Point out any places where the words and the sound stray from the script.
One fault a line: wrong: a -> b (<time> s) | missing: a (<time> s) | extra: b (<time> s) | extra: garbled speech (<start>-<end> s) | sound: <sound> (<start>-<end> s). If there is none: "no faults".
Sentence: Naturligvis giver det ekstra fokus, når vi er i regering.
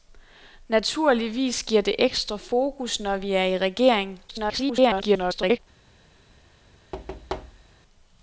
extra: garbled speech (4.3-5.6 s)
sound: thud (6.9-7.7 s)